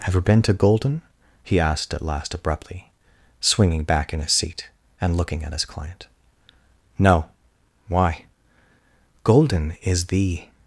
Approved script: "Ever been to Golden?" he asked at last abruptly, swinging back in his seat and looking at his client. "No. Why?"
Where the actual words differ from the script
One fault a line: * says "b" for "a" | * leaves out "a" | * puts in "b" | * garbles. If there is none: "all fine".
* puts in "Golden is the"